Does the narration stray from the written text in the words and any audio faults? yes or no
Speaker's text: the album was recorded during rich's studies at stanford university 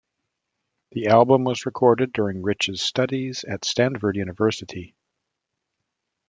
no